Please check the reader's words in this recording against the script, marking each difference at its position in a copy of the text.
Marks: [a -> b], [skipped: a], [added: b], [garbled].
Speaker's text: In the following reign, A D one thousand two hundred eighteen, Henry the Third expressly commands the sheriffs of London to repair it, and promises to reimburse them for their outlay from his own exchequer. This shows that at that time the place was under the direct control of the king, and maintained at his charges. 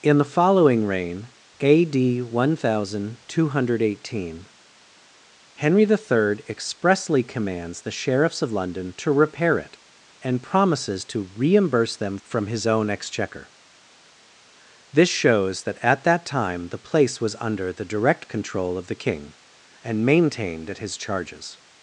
In the following reign, A D one thousand two hundred eighteen, Henry the Third expressly commands the sheriffs of London to repair it, and promises to reimburse them [skipped: for their outlay] from his own exchequer. This shows that at that time the place was under the direct control of the king, and maintained at his charges.